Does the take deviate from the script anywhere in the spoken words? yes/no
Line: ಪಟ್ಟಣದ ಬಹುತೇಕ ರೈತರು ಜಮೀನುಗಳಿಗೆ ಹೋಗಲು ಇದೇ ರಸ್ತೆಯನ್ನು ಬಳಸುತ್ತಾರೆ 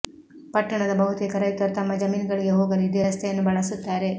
yes